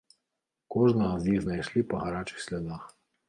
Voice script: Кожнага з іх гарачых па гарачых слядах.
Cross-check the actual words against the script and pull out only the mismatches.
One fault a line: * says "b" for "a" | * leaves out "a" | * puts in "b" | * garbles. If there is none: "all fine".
* says "знайшлі" for "гарачых"